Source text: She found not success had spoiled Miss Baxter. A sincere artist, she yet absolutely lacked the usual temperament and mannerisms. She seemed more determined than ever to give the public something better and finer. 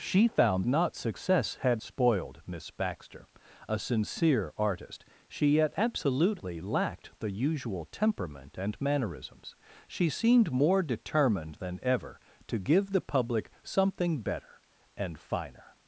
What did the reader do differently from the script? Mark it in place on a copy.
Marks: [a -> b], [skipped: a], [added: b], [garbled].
She found not success had spoiled Miss Baxter. A sincere artist, she yet absolutely lacked the usual temperament and mannerisms. She seemed more determined than ever to give the public something better and finer.